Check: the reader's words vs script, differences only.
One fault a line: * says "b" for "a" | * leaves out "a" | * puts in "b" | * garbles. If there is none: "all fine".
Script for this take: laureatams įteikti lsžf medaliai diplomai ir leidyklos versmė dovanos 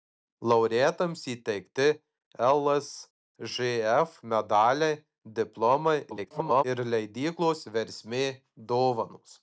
* garbles